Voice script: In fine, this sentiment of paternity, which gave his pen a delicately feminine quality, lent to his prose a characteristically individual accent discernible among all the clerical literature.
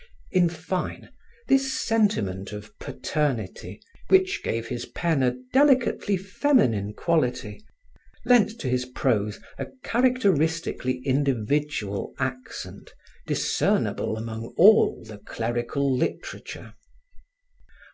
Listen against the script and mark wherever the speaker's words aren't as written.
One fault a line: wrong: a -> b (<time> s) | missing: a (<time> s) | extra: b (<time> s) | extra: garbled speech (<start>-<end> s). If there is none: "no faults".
no faults